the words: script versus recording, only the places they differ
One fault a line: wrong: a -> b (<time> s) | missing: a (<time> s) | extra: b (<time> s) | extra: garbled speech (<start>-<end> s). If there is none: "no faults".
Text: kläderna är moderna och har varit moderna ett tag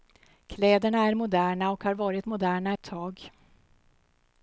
no faults